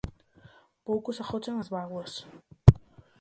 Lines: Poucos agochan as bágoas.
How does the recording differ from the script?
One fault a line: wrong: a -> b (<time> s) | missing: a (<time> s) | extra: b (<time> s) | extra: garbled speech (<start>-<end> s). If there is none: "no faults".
no faults